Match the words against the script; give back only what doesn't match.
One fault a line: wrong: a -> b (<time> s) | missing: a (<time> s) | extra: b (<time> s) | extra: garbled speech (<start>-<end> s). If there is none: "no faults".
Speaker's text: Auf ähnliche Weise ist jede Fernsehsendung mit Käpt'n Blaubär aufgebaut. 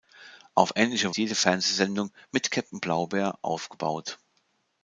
missing: Weise ist (1.1 s)